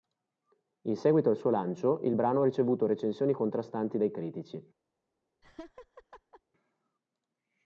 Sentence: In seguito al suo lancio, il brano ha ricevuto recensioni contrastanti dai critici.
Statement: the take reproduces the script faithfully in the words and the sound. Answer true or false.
false